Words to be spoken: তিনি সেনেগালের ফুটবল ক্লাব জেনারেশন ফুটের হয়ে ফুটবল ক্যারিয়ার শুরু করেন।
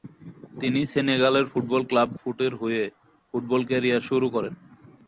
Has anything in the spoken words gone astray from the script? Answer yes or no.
yes